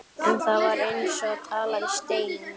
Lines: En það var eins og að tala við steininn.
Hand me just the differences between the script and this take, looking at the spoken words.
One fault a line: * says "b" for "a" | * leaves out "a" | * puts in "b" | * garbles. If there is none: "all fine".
all fine